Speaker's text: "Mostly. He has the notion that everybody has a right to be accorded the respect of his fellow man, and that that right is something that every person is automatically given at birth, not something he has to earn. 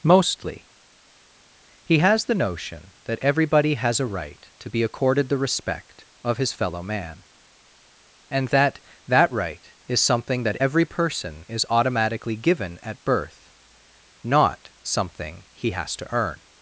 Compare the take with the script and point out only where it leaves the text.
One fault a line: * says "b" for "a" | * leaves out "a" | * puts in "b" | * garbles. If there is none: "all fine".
all fine